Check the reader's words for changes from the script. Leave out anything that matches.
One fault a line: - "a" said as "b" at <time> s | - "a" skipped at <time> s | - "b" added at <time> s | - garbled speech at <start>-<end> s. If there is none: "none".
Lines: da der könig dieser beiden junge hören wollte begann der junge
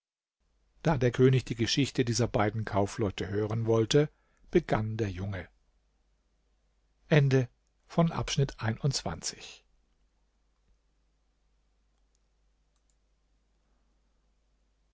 - "die geschichte" added at 1.4 s
- "junge" said as "kaufleute" at 2.6 s